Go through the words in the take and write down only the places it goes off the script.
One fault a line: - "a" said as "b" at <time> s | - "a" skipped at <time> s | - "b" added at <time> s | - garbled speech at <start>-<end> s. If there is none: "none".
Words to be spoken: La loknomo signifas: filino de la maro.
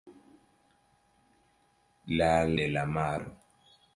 - "loknomo signifas filino" skipped at 2.3 s